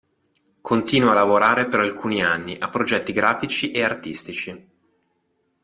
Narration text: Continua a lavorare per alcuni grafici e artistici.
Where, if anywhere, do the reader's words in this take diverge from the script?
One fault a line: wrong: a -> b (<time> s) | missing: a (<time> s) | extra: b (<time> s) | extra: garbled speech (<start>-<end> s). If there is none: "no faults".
extra: anni a progetti (2.2 s)